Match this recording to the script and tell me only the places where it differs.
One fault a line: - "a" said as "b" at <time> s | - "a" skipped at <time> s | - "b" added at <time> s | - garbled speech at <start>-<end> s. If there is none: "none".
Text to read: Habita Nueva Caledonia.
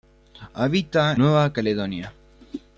none